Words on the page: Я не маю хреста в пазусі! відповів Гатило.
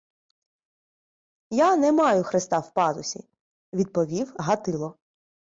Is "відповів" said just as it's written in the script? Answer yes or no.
yes